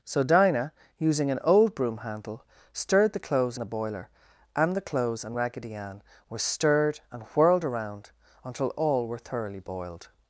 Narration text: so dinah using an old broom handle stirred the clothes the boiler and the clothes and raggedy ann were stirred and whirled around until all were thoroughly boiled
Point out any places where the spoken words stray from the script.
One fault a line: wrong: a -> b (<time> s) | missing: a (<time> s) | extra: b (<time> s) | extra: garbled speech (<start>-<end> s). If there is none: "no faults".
no faults